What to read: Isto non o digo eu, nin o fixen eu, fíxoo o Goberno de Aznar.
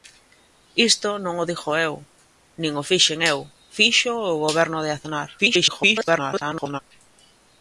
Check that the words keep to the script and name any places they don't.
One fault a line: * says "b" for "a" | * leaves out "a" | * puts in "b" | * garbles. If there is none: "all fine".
* garbles